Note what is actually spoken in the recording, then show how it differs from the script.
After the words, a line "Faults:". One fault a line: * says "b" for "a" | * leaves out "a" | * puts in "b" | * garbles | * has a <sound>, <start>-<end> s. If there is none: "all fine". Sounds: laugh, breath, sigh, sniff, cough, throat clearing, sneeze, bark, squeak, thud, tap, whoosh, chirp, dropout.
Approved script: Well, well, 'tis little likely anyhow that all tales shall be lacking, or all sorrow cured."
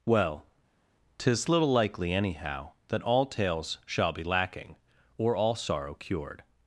Well, 'tis little likely anyhow that all tales shall be lacking, or all sorrow cured."
Faults:
* leaves out "well"